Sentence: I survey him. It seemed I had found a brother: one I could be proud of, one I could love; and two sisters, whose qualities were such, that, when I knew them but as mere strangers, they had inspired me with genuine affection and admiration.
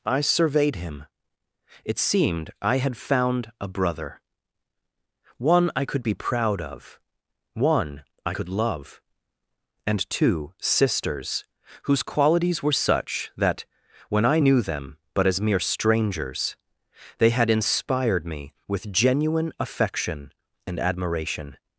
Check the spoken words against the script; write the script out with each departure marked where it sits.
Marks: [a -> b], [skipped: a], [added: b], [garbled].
I [survey -> surveyed] him. It seemed I had found a brother: one I could be proud of, one I could love; and two sisters, whose qualities were such, that, when I knew them but as mere strangers, they had inspired me with genuine affection and admiration.